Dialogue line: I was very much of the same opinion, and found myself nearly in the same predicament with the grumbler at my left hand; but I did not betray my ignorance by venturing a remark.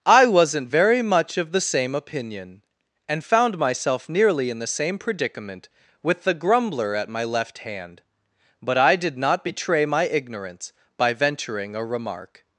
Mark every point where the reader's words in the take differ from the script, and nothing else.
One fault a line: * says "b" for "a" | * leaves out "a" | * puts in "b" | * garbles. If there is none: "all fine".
* says "wasn't" for "was"